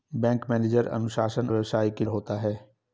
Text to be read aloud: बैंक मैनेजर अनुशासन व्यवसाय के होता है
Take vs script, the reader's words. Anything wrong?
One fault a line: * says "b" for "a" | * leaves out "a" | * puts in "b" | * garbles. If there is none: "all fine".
all fine